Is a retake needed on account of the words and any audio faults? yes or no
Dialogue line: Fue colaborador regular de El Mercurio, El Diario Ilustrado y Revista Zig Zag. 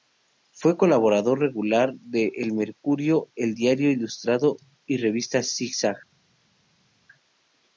no